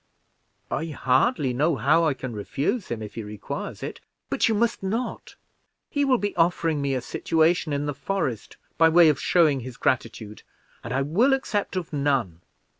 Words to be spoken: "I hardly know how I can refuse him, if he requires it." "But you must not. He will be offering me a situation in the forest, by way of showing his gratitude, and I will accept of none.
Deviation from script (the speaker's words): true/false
false